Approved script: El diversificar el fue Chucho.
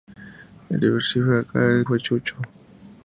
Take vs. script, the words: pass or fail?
pass